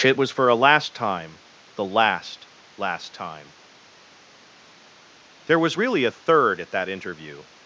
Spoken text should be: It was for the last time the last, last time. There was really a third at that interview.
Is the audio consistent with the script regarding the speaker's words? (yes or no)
no